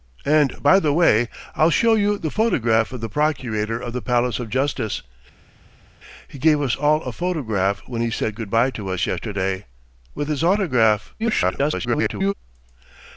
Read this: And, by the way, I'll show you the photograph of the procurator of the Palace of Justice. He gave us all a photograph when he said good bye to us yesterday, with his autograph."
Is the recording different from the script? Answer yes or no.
yes